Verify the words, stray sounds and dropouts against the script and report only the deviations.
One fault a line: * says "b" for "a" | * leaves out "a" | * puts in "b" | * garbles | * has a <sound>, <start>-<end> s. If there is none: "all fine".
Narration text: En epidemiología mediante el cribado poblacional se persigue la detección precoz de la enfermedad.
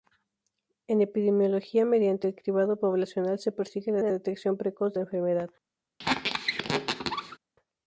* puts in "la"
* leaves out "de"
* has a squeak, 6.0-7.4 s